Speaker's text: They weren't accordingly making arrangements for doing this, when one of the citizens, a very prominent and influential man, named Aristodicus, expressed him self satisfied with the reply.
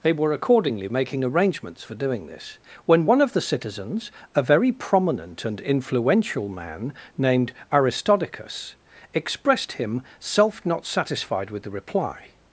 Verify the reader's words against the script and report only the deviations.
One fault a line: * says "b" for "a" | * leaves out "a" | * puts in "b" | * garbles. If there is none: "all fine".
* says "were" for "weren't"
* puts in "not"